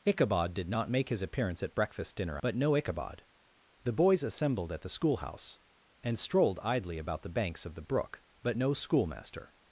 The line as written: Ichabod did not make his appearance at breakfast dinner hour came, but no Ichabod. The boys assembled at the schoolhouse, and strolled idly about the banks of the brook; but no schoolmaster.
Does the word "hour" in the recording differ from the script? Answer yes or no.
yes